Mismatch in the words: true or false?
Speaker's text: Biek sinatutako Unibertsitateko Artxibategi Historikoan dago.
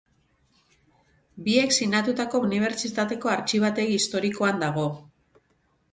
false